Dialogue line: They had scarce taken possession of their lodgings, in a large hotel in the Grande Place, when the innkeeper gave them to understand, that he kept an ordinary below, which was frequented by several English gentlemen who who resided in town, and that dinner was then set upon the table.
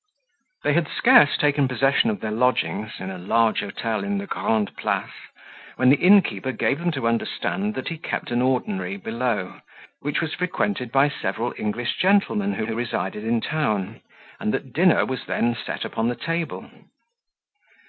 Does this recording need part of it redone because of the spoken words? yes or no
no